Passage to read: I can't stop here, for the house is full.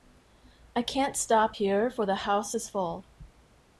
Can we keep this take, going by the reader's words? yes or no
yes